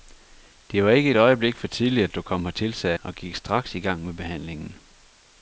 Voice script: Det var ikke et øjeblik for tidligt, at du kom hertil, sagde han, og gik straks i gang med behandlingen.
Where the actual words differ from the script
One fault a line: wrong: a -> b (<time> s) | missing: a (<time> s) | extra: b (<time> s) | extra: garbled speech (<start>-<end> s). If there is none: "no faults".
missing: han (3.0 s)